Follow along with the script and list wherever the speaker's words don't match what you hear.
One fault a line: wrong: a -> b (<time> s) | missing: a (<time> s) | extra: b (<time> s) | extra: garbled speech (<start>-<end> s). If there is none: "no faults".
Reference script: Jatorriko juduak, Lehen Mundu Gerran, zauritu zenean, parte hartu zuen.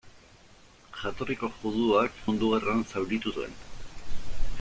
missing: Lehen (2.2 s)
missing: zenean parte hartu (3.3 s)